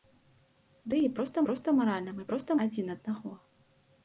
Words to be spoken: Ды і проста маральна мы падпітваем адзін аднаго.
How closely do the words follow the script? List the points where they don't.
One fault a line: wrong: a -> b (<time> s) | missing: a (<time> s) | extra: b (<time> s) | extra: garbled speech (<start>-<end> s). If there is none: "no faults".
extra: проста (1.5 s)
wrong: падпітваем -> проста (2.3 s)